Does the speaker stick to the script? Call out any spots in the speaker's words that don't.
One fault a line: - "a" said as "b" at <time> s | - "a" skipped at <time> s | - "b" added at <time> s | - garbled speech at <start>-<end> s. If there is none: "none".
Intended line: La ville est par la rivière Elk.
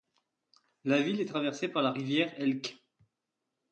- "traversée" added at 1.2 s